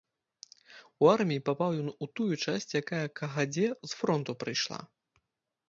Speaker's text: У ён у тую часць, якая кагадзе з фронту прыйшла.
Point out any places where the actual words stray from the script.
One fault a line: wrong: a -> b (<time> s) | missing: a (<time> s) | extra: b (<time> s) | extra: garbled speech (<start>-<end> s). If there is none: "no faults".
extra: арміі папаў (1.1 s)